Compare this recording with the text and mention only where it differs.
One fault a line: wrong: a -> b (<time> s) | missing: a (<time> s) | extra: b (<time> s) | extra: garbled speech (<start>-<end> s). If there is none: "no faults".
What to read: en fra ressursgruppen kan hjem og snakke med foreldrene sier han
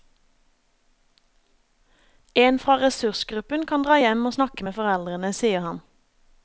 extra: dra (3.8 s)